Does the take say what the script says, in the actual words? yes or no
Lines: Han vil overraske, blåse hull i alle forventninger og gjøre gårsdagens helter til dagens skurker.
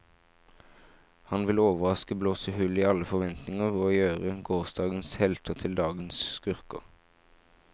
yes